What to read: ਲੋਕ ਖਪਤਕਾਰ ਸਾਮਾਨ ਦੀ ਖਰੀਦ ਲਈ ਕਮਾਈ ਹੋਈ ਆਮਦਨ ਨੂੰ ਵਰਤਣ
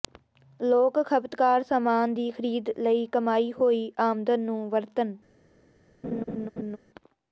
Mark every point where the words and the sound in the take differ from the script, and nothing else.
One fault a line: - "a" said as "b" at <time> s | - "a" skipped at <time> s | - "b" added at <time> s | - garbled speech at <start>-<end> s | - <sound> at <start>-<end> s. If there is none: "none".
- laugh at 6.0-6.8 s